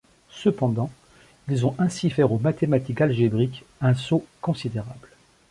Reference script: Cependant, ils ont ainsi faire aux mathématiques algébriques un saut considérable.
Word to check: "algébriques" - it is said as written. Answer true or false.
true